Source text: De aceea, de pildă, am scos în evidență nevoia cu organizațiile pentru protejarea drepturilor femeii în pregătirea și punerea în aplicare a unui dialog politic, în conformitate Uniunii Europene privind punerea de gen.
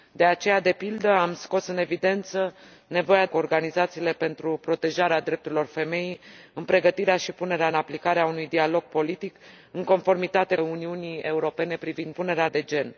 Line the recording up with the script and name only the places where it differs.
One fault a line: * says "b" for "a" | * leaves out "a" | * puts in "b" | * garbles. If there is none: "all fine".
all fine